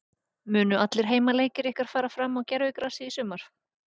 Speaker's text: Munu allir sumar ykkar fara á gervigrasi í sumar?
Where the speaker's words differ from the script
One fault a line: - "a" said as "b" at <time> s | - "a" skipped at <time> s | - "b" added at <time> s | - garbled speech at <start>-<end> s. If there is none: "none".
- "sumar" said as "heimaleikir" at 1.1 s
- "fram" added at 2.2 s